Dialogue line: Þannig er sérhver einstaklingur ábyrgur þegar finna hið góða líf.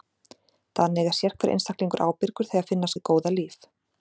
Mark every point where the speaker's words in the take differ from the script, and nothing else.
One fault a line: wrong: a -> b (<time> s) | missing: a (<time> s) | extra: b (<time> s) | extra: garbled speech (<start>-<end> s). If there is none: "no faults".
no faults